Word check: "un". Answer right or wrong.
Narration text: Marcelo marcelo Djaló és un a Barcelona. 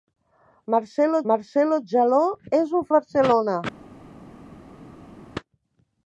right